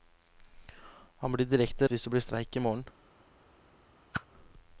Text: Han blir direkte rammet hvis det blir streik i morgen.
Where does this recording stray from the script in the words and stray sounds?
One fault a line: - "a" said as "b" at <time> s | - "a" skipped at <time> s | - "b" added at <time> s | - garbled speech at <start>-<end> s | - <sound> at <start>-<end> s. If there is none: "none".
- "rammet" skipped at 1.9 s
- whoosh at 4.1-4.2 s